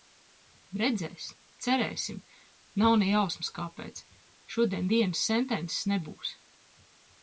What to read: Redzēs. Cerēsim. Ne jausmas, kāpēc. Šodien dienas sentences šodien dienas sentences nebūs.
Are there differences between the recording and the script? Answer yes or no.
yes